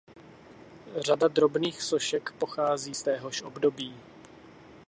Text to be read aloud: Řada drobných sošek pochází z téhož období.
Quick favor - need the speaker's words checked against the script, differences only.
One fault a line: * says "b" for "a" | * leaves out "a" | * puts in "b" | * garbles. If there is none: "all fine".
all fine